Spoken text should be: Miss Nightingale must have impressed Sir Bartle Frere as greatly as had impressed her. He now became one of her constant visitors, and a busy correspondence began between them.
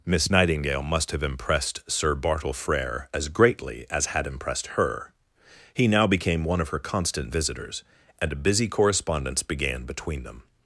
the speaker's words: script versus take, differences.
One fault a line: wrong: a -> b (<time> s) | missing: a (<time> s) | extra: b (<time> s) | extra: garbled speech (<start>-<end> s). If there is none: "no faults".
no faults